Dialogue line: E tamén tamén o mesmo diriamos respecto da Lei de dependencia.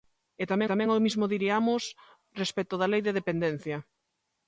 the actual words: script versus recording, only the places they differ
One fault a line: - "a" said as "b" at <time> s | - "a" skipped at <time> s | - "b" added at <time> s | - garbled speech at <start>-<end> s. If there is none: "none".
none